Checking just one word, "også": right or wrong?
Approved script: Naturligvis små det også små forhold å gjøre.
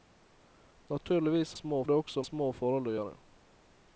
right